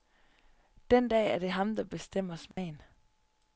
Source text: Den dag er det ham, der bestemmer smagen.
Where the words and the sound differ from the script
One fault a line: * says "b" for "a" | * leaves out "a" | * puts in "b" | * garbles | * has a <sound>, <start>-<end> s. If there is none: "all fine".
* has a dropout, 2.5-2.6 s